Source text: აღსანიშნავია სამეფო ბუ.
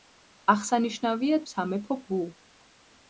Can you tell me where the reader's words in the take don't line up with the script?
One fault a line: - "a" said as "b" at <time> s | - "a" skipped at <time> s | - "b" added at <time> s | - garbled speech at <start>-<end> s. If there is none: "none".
none